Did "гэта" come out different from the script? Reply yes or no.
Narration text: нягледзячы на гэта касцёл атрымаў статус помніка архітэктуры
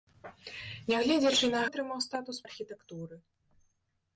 yes